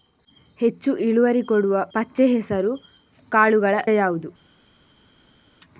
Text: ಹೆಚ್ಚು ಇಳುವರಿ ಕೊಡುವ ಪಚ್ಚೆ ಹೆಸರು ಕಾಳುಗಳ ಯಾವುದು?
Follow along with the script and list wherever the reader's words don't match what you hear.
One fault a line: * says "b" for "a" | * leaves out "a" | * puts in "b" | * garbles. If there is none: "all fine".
all fine